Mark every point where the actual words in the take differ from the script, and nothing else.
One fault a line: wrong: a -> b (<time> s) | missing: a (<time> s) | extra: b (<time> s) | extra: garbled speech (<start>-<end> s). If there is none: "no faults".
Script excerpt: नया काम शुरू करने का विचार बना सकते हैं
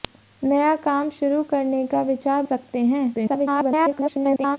missing: बना (2.4 s)
extra: garbled speech (3.1-4.6 s)